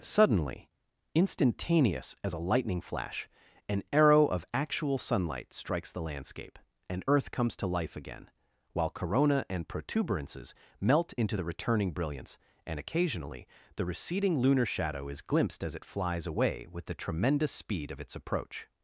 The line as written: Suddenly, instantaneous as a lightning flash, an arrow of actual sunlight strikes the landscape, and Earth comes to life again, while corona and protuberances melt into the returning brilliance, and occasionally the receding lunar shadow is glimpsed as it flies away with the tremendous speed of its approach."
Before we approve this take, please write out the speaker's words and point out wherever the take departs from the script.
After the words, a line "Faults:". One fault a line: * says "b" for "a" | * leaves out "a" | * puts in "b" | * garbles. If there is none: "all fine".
Suddenly, instantaneous as a lightning flash, an arrow of actual sunlight strikes the landscape, and Earth comes to life again, while corona and protuberances melt into the returning brilliance, and occasionally the receding lunar shadow is glimpsed as it flies away with the tremendous speed of its approach."
Faults:
all fine